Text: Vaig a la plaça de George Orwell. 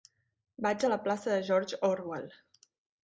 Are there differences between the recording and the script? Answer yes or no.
no